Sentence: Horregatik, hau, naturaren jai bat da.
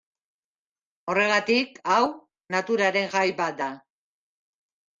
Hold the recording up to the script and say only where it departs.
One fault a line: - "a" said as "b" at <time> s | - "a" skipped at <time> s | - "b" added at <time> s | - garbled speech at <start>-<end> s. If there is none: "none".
none